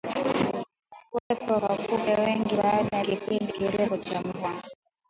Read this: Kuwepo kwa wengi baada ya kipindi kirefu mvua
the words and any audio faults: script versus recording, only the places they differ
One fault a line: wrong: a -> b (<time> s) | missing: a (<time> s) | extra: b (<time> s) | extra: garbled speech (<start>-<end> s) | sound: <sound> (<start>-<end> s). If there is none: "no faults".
sound: dropout (1.2-1.3 s)
extra: kupe (1.8 s)
extra: cha (4.0 s)